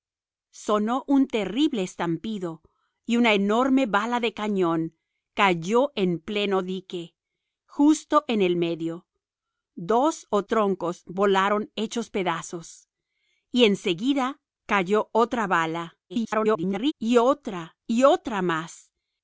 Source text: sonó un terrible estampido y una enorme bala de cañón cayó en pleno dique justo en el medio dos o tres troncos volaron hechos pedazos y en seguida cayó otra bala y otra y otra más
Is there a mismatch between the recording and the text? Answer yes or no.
yes